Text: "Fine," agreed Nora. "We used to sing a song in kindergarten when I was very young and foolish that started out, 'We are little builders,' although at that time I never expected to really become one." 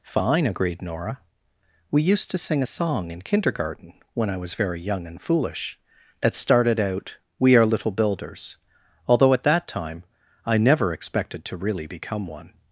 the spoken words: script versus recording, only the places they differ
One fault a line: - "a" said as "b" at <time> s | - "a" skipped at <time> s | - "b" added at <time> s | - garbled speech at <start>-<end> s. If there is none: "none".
- "that" said as "it" at 6.2 s